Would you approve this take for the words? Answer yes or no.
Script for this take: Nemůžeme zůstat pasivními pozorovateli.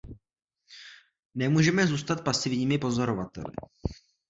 yes